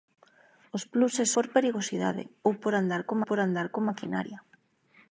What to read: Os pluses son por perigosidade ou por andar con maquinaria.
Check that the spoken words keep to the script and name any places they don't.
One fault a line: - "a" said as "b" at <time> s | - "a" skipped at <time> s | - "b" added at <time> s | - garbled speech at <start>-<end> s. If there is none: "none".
- "son" skipped at 1.3 s
- "por andar con" added at 3.3 s